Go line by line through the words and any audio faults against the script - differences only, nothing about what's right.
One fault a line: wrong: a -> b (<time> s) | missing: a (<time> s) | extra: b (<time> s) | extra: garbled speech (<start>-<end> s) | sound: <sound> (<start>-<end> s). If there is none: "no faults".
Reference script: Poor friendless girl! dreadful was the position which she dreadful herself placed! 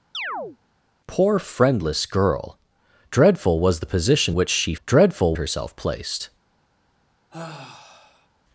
sound: chirp (0.1-0.6 s)
sound: sigh (7.3-8.3 s)